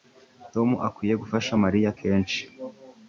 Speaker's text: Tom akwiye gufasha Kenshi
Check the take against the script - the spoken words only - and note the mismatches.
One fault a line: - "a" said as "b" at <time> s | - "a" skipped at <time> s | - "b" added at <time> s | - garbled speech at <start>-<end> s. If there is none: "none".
- "Mariya" added at 1.6 s